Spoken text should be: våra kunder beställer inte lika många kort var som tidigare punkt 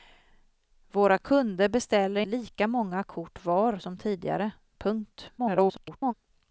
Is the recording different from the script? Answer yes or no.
yes